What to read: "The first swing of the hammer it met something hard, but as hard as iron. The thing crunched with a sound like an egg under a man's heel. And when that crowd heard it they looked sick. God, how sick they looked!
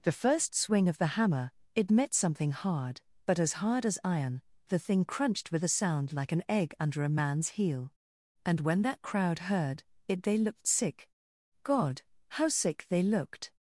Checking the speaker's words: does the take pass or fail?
pass